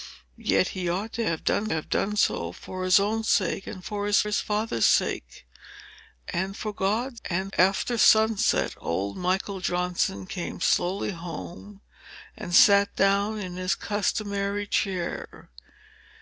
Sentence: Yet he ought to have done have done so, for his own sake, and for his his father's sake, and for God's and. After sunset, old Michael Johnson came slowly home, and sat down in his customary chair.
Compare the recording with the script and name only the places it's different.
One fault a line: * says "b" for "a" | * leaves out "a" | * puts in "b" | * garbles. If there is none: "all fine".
all fine